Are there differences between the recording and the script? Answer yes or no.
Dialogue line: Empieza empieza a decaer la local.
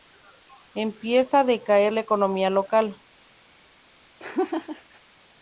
yes